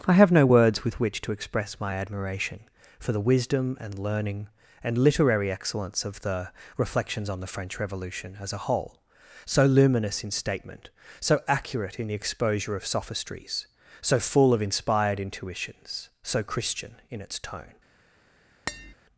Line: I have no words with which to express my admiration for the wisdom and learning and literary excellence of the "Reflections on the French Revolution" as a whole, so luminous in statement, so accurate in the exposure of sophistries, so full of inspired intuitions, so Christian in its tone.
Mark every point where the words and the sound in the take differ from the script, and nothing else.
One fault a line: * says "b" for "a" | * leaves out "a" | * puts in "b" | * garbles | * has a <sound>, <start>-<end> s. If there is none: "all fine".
* has a tap, 18.7-18.9 s